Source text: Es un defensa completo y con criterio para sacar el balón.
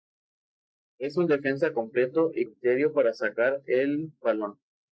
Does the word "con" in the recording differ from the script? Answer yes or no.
yes